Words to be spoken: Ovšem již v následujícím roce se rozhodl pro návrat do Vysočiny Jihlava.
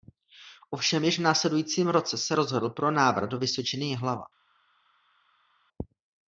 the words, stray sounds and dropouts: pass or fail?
pass